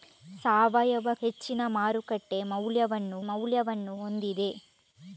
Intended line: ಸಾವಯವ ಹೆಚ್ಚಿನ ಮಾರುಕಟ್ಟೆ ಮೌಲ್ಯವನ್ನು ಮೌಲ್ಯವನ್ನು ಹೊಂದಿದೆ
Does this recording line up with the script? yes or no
yes